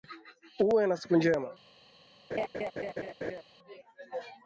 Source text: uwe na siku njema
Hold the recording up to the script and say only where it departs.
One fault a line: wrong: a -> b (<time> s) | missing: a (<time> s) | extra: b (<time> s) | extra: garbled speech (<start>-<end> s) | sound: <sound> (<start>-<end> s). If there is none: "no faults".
sound: laugh (2.3-3.4 s)